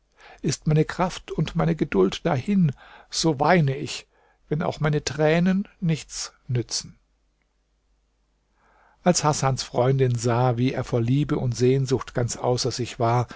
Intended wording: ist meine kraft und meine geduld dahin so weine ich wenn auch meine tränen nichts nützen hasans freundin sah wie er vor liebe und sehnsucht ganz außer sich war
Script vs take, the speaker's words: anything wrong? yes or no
yes